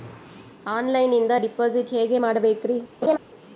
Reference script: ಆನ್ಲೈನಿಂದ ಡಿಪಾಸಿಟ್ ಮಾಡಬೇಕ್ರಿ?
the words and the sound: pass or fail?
fail